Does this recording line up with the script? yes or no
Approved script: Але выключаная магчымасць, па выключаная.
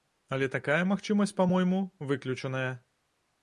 no